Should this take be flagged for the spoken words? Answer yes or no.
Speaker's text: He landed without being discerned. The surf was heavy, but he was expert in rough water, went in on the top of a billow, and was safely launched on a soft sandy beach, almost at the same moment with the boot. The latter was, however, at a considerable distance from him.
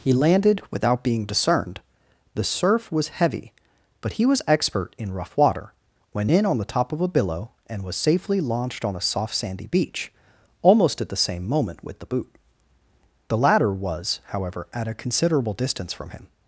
no